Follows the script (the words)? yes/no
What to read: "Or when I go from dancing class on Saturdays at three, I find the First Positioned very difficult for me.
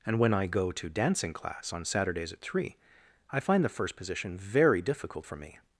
no